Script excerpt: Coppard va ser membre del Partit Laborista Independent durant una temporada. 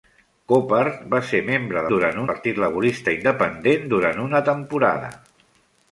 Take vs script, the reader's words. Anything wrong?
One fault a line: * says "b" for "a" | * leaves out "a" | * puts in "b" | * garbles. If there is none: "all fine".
* says "durant" for "del"